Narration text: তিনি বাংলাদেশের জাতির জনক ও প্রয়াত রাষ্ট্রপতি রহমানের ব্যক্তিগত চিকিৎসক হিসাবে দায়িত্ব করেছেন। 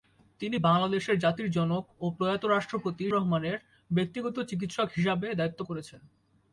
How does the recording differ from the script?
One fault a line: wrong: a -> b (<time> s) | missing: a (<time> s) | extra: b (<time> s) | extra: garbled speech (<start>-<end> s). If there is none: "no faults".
no faults